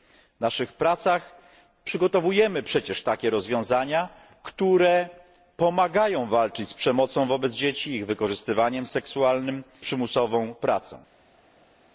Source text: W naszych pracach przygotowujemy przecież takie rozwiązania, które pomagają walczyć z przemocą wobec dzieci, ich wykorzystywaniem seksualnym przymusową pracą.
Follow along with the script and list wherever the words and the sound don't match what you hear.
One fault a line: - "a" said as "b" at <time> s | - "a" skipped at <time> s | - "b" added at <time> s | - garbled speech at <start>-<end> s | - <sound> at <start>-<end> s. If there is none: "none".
none